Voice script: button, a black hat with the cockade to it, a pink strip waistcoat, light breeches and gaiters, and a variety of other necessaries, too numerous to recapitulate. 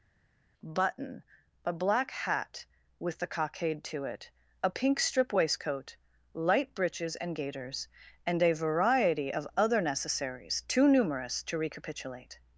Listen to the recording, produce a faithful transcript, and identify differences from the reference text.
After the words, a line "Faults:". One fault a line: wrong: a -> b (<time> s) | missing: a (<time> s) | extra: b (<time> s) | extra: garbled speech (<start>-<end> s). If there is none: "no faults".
button, a black hat with the cockade to it, a pink strip waistcoat, light breeches and gaiters, and a variety of other necessaries, too numerous to recapitulate.
Faults:
no faults